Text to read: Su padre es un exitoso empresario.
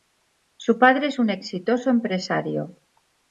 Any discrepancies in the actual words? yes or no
no